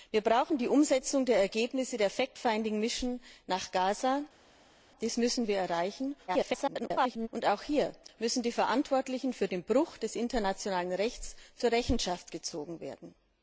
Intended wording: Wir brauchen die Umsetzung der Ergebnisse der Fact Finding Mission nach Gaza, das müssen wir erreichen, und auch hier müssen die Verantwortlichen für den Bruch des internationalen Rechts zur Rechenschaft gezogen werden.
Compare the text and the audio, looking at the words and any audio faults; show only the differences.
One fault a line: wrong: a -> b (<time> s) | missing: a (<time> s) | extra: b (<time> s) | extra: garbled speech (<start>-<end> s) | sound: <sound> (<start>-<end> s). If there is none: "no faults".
extra: garbled speech (6.3-7.3 s)